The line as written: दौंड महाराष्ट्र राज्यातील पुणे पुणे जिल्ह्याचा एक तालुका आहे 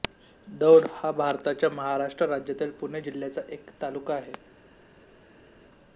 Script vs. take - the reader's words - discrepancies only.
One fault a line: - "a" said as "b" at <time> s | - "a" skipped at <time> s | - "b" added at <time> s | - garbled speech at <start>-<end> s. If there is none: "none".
- "हा भारताच्या" added at 0.9 s
- "पुणे" skipped at 3.0 s